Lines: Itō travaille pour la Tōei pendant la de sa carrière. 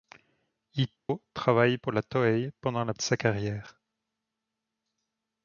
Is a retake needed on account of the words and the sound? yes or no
yes